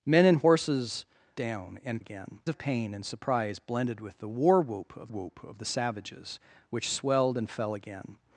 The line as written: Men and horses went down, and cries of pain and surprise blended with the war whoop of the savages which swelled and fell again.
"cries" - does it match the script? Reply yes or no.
no